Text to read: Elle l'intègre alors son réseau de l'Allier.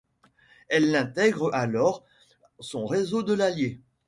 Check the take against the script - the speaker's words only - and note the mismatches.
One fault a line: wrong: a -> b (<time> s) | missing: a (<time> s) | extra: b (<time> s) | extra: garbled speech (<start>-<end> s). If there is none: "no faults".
no faults